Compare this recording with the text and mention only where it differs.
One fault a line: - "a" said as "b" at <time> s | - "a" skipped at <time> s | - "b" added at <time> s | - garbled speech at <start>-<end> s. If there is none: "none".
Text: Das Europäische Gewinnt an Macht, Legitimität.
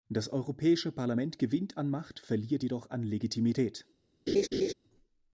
- "Parlament" added at 0.9 s
- "verliert jedoch an" added at 2.2 s